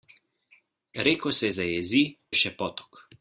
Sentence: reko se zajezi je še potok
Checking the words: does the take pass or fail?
pass